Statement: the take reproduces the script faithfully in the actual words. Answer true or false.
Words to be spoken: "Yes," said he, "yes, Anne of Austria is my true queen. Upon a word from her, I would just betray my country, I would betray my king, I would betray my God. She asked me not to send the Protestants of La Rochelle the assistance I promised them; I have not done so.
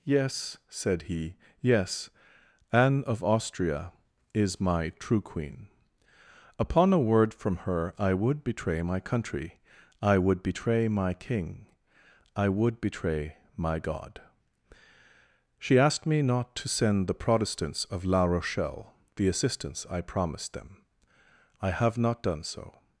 false